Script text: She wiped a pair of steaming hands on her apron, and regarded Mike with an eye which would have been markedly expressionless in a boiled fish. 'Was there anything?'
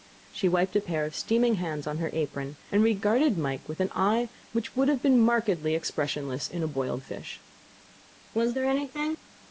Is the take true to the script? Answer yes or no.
yes